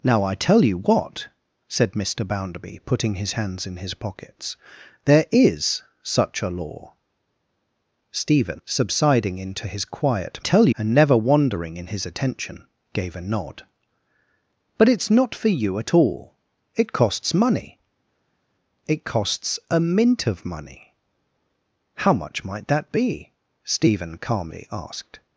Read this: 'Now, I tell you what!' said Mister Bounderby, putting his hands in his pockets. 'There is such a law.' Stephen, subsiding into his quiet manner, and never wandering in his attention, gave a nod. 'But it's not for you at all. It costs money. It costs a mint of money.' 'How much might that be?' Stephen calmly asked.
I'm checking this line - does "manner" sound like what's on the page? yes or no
no